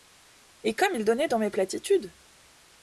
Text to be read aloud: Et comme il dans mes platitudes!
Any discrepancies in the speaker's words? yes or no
yes